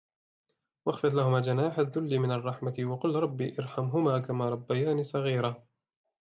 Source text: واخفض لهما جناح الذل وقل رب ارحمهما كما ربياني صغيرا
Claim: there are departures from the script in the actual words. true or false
true